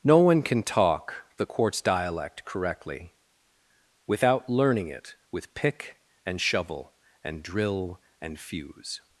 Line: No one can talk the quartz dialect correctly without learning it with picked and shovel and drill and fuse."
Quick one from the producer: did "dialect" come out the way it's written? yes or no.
yes